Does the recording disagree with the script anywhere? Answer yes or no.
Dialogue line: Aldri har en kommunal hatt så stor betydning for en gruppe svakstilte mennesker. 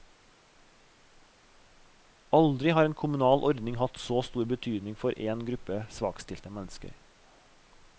yes